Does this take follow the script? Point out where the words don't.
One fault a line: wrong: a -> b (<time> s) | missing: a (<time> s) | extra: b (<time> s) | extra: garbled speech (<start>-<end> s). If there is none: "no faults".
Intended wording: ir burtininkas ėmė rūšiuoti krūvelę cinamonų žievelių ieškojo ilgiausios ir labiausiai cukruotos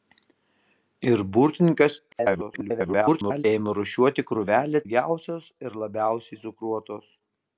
extra: garbled speech (2.1-3.4 s)
missing: cinamonų žievelių ieškojo (4.8 s)